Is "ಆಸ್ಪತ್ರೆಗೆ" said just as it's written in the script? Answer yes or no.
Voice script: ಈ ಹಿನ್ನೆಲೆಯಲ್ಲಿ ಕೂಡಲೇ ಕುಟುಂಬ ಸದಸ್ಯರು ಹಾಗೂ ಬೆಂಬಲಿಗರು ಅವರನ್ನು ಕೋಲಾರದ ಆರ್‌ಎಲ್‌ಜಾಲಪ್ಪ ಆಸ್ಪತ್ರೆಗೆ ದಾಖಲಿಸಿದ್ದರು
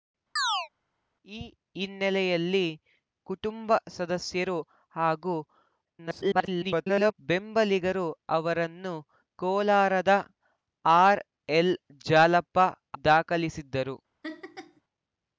no